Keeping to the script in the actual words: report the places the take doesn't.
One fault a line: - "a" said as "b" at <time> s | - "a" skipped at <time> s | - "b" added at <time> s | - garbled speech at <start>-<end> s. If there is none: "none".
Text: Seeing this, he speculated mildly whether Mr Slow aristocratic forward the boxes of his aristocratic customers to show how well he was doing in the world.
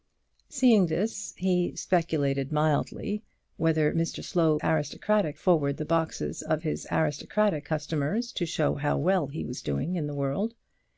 none